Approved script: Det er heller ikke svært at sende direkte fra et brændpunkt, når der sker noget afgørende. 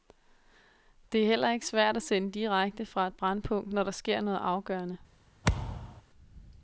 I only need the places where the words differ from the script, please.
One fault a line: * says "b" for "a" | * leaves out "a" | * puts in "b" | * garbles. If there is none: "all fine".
all fine